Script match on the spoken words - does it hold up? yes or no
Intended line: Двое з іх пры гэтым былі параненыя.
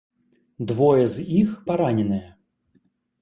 no